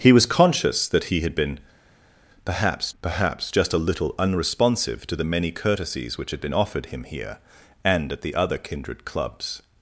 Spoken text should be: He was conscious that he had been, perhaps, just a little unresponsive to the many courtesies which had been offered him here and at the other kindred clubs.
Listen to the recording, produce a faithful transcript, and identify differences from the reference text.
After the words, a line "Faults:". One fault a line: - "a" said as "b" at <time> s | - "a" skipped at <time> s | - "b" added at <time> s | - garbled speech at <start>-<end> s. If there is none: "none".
He was conscious that he had been, perhaps perhaps, just a little unresponsive to the many courtesies which had been offered him here and at the other kindred clubs.
Faults:
- "perhaps" added at 3.0 s